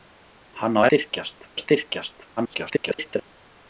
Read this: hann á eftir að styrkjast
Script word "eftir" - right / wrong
wrong